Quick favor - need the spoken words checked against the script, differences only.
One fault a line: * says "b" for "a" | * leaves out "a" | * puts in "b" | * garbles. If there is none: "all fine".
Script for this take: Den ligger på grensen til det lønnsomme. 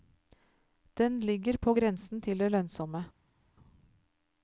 all fine